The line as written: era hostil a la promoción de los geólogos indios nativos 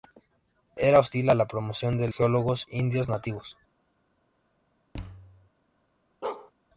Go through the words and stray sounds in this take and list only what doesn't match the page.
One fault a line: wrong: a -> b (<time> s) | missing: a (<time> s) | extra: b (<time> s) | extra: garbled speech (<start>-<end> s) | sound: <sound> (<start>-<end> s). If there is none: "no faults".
missing: los (2.1 s)
sound: thud (4.9-5.5 s)
sound: bark (6.2-6.5 s)